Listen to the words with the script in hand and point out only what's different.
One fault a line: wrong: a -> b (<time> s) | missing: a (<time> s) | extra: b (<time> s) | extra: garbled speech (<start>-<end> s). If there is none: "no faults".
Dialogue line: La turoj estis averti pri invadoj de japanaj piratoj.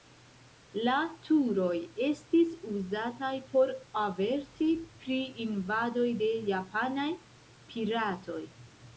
extra: uzataj por (2.8 s)